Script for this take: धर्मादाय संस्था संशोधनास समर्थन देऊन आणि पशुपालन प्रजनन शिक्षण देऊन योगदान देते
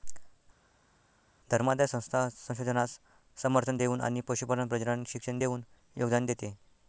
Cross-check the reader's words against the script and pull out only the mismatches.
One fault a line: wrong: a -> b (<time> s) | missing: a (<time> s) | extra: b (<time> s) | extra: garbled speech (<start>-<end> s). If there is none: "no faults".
no faults